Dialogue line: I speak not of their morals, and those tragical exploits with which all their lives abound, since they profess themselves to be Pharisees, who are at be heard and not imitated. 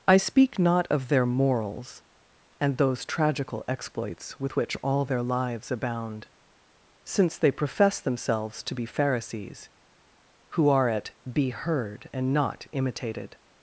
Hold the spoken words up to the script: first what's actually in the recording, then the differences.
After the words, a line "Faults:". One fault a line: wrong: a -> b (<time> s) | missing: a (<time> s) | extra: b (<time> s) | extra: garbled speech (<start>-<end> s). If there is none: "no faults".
I speak not of their morals, and those tragical exploits with which all their lives abound, since they profess themselves to be Pharisees, who are at be heard and not imitated.
Faults:
no faults